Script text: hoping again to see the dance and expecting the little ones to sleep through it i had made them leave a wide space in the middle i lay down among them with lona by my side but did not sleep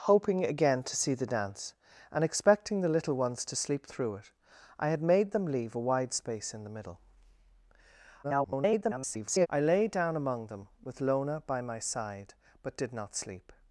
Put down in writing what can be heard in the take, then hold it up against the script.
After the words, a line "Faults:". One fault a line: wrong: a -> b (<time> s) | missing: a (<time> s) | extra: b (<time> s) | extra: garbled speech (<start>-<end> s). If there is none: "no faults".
hoping again to see the dance and expecting the little ones to sleep through it i had made them leave a wide space in the middle [garbled] i lay down among them with lona by my side but did not sleep
Faults:
extra: garbled speech (8.2-9.5 s)